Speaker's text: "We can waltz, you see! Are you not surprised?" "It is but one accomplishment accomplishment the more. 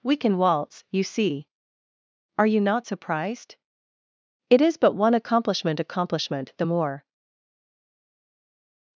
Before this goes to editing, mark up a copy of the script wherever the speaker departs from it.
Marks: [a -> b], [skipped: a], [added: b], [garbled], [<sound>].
"We can waltz, you see! Are you not surprised?" "It is but one accomplishment accomplishment the more.